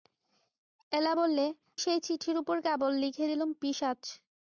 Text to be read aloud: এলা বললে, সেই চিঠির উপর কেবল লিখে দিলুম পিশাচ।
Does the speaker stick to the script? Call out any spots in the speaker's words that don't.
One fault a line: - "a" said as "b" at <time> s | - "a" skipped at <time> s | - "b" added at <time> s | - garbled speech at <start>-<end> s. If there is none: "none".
none